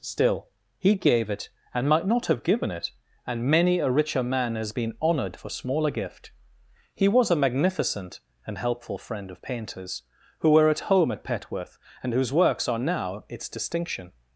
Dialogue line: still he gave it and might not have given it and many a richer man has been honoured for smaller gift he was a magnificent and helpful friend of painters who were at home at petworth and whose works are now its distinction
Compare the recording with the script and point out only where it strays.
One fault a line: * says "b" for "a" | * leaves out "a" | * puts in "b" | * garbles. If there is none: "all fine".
all fine